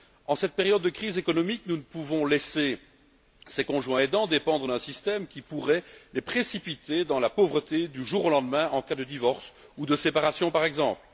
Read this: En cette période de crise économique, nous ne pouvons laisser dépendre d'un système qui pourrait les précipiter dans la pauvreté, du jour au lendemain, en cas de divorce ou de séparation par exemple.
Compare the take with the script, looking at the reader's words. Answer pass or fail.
fail